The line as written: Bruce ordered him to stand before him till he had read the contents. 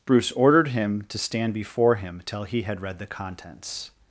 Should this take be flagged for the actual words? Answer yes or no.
no